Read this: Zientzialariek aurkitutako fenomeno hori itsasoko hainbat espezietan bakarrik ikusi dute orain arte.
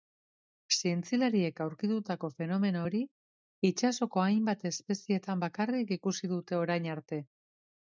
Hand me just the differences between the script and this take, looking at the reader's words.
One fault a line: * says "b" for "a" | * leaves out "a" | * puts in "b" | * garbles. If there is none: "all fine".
all fine